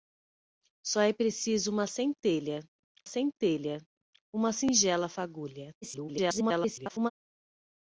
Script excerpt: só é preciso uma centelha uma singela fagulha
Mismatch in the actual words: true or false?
true